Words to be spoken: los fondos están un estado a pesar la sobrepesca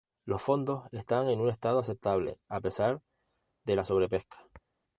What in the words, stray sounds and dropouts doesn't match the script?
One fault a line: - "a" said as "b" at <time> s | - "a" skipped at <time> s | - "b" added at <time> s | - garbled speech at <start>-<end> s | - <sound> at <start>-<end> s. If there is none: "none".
- "en" added at 1.3 s
- "aceptable" added at 1.8 s
- "de" added at 3.6 s